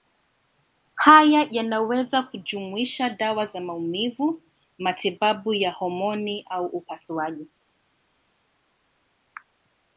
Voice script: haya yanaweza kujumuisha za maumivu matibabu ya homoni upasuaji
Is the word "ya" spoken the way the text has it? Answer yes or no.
yes